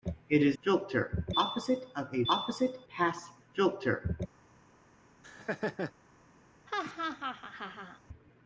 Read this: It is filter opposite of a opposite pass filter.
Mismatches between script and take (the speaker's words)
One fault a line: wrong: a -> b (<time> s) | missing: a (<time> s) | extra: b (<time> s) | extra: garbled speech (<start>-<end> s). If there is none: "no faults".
no faults